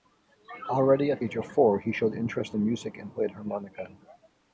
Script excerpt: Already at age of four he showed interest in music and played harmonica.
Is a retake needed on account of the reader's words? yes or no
no